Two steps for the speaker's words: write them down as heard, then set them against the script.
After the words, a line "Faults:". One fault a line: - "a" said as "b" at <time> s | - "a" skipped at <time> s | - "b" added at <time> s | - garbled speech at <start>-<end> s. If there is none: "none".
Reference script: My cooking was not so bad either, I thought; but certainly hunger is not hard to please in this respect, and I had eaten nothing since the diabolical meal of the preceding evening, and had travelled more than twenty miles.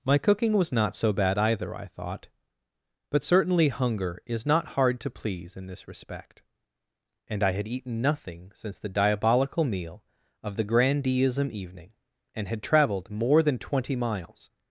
My cooking was not so bad either, I thought; but certainly hunger is not hard to please in this respect, and I had eaten nothing since the diabolical meal of the grandeeism evening, and had travelled more than twenty miles.
Faults:
- "preceding" said as "grandeeism" at 10.6 s